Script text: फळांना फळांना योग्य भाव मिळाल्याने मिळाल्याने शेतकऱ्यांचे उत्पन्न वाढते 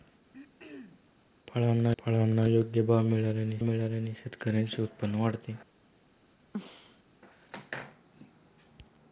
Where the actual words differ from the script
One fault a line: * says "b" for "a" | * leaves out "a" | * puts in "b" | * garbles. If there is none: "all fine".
all fine